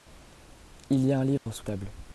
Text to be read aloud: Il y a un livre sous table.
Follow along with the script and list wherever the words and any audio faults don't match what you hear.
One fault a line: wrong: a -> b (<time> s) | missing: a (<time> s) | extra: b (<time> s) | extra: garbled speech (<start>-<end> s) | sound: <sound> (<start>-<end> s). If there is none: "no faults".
sound: dropout (1.4-1.5 s)